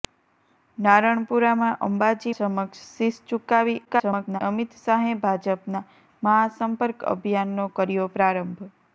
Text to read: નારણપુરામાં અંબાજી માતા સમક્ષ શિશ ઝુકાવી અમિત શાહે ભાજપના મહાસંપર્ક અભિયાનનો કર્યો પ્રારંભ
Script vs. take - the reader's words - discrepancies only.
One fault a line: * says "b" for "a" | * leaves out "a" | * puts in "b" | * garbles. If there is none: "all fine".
* leaves out "માતા"
* garbles